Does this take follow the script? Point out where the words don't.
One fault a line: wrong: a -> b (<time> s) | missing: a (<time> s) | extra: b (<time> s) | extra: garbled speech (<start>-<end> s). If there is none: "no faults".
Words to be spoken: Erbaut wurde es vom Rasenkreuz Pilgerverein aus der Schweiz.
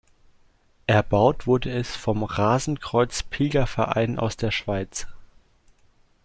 no faults